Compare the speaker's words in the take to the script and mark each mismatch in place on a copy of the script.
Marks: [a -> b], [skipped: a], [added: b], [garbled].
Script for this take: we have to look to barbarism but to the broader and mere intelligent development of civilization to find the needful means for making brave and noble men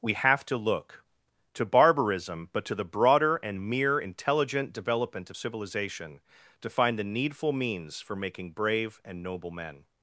we have to look to barbarism but to the broader and mere intelligent development of civilization to find the needful means for making brave and noble men